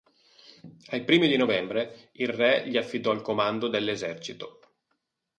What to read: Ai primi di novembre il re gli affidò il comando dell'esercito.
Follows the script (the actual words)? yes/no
yes